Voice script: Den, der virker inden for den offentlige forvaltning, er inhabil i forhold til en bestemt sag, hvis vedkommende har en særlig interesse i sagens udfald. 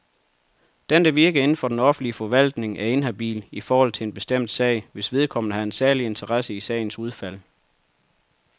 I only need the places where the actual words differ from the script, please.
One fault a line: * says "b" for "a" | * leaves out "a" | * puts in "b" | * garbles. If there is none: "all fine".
all fine